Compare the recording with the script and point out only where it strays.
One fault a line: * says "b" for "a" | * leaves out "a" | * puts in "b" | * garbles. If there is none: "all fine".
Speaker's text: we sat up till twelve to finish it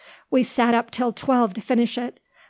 all fine